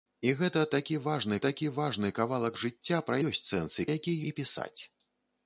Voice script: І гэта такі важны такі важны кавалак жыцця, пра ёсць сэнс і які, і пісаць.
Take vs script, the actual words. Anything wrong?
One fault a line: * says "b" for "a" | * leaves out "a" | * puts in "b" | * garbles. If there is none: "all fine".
all fine